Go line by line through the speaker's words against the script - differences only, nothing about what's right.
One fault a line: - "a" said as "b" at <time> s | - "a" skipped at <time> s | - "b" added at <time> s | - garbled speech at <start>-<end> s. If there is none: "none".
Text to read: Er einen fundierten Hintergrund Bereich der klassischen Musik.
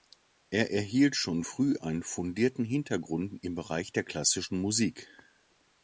- "erhielt schon früh" added at 0.7 s
- "im" added at 3.4 s